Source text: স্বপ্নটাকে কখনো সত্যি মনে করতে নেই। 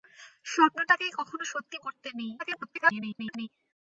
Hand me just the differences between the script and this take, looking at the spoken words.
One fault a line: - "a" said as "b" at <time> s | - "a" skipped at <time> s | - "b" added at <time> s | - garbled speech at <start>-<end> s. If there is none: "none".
- "মনে" skipped at 1.8 s
- garbled speech at 2.4-3.5 s